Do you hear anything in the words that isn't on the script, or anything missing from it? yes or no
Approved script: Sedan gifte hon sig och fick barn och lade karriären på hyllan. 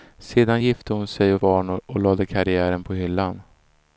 yes